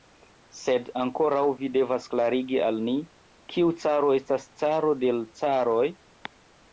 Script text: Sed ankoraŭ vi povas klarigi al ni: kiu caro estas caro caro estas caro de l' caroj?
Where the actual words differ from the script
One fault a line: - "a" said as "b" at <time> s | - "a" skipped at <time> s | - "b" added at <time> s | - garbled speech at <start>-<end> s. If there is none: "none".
- "povas" said as "devas" at 1.8 s
- "caro estas caro" skipped at 4.9 s